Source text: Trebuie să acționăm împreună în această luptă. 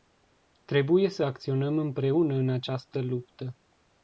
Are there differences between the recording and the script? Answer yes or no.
no